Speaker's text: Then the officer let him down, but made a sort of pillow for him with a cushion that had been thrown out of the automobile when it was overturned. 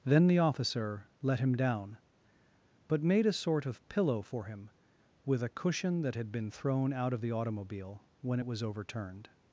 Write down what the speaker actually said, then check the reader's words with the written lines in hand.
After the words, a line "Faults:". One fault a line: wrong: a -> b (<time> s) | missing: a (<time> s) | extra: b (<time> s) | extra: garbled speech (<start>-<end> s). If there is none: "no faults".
Then the officer let him down, but made a sort of pillow for him with a cushion that had been thrown out of the automobile when it was overturned.
Faults:
no faults